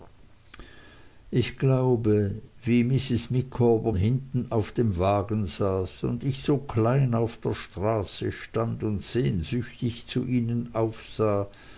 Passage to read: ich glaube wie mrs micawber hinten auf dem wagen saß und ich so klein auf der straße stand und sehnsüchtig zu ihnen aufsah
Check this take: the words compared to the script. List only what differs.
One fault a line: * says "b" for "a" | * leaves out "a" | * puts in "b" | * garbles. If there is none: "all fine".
all fine